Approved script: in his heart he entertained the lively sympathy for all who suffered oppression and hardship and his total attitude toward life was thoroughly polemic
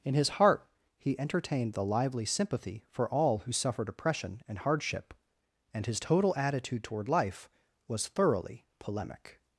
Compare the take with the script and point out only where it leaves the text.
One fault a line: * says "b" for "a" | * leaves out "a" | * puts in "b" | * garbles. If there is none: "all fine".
all fine